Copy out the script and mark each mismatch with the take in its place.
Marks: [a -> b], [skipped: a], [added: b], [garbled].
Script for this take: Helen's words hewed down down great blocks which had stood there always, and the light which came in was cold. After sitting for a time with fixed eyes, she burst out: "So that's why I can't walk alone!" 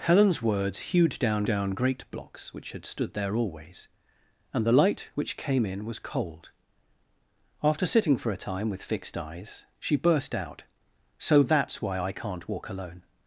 Helen's words hewed down down great blocks which had stood there always, and the light which came in was cold. After sitting for a time with fixed eyes, she burst out: "So that's why I can't walk alone!"